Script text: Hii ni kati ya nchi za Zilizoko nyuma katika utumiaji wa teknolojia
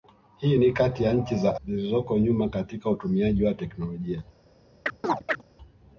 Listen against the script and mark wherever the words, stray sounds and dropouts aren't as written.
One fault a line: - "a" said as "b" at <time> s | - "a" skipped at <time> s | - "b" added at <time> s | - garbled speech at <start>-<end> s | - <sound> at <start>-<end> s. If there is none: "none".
- chirp at 4.9-5.4 s